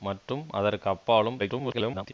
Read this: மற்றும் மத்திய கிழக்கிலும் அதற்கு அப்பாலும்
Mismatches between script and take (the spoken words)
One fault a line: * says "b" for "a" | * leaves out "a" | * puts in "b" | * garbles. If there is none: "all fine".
* leaves out "மத்திய கிழக்கிலும்"
* garbles